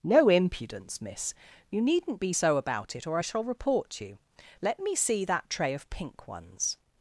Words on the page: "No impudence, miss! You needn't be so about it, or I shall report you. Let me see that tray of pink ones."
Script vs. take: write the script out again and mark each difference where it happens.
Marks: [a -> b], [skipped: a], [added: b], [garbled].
"No impudence, miss! You needn't be so about it, or I shall report you. Let me see that tray of pink ones."